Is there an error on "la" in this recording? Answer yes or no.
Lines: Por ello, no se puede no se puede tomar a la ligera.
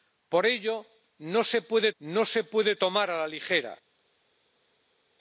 no